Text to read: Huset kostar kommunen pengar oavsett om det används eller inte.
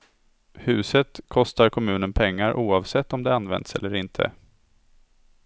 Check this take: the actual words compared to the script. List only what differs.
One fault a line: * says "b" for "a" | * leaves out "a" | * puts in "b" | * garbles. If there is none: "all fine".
all fine